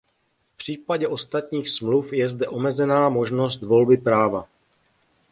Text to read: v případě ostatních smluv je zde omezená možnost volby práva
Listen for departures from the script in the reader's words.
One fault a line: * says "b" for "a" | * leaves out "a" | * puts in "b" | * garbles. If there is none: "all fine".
all fine